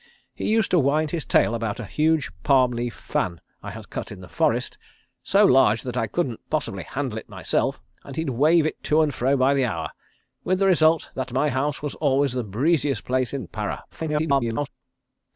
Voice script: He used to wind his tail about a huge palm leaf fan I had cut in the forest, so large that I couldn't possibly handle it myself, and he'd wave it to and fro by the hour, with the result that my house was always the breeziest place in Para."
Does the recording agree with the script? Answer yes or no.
no